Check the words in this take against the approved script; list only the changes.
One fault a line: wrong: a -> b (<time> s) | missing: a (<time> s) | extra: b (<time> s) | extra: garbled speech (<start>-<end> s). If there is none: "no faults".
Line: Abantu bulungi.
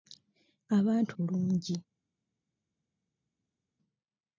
no faults